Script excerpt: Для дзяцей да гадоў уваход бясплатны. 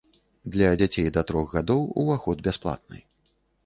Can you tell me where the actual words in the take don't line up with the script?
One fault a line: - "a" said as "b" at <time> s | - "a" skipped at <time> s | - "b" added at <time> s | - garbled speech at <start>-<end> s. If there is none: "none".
- "трох" added at 1.3 s